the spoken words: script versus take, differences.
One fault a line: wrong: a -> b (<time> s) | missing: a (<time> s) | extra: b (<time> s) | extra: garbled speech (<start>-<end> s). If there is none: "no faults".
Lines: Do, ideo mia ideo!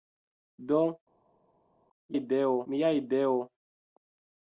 no faults